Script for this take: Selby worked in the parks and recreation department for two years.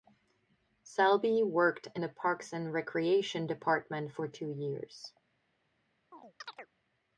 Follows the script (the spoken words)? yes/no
yes